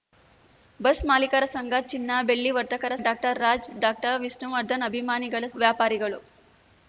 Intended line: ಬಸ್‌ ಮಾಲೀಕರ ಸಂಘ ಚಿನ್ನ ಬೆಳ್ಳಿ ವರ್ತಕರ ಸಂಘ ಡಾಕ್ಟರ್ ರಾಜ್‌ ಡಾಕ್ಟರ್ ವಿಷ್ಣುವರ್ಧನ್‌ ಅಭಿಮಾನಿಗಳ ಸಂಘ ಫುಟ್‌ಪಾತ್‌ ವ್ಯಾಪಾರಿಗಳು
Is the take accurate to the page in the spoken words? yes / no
no